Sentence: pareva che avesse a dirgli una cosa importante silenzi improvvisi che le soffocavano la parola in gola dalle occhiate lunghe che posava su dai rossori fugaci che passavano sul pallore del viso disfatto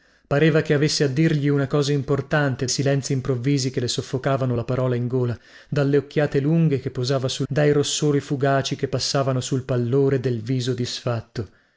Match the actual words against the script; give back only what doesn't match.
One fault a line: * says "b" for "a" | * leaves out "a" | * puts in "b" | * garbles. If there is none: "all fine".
all fine